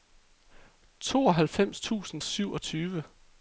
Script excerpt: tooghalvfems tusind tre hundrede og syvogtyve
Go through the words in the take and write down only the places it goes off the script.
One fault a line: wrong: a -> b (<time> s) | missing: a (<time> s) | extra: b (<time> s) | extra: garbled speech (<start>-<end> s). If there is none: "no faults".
missing: tre hundrede og (2.2 s)